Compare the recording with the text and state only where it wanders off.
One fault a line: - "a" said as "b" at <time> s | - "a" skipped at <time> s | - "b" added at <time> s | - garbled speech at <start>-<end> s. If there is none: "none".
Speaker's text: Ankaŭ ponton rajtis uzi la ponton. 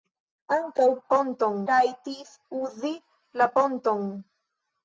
none